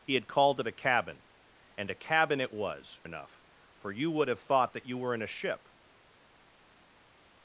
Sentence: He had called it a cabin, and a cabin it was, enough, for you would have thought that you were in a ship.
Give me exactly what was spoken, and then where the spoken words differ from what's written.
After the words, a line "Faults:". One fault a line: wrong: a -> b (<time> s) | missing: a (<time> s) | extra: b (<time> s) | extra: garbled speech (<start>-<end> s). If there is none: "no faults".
He had called it a cabin, and a cabin it was, enough, for you would have thought that you were in a ship.
Faults:
no faults